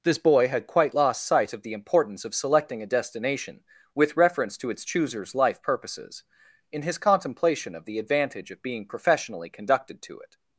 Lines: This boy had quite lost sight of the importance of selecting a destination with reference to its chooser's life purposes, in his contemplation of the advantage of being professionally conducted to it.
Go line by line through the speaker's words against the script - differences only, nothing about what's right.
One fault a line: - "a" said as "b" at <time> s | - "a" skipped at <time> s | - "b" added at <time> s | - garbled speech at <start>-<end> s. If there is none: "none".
none